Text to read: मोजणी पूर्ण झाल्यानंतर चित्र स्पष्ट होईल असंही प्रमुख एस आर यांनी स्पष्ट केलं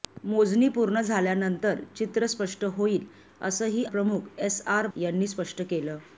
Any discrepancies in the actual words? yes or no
no